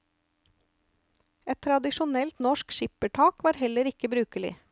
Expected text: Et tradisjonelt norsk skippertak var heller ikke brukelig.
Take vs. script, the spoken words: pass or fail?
pass